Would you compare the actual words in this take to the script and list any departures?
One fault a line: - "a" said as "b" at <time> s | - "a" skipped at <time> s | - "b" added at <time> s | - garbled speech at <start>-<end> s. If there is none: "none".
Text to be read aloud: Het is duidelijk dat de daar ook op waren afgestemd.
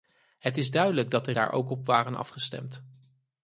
none